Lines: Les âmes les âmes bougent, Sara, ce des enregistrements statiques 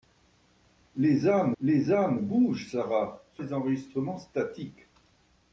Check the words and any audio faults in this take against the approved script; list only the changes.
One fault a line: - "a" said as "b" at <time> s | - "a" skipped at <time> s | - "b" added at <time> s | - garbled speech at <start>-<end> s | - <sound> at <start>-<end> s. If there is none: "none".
none